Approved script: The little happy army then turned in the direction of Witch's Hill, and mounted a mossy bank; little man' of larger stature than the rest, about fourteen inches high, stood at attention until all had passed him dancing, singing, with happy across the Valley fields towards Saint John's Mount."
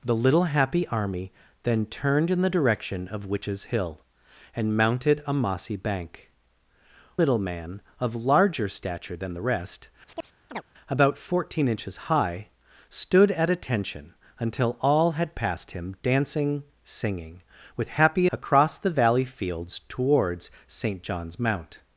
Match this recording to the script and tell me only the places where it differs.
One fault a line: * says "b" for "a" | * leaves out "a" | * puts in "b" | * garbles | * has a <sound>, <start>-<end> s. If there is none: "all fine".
* has a chirp, 10.1-10.6 s